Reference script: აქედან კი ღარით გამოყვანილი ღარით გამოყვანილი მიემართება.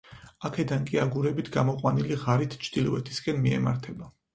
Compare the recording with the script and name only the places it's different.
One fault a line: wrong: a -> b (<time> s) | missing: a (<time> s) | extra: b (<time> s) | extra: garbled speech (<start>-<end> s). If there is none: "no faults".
wrong: ღარით -> აგურებით (1.0 s)
wrong: გამოყვანილი -> ჩრდილოეთისკენ (2.7 s)